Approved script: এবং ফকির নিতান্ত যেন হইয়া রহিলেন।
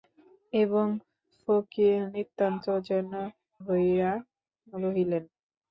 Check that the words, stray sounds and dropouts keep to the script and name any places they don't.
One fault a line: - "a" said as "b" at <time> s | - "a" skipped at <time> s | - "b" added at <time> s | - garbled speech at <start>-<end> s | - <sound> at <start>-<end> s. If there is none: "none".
none